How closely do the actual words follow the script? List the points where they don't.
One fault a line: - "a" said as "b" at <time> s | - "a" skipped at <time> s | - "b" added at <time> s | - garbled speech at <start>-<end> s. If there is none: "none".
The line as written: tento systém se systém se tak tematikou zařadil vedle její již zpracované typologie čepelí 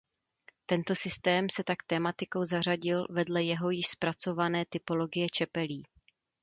- "systém se" skipped at 1.6 s
- "její" said as "jeho" at 3.4 s